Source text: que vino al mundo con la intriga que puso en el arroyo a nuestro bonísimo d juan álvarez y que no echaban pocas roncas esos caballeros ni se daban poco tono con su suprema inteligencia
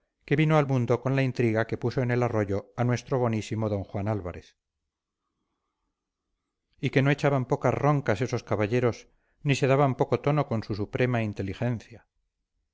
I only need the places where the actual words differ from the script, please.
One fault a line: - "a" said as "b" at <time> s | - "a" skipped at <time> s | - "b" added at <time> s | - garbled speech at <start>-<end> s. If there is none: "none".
none